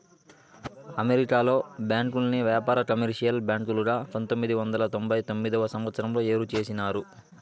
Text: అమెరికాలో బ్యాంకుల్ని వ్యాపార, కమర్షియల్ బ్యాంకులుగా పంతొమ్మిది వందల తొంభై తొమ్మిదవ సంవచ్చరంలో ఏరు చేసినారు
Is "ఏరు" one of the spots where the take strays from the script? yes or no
no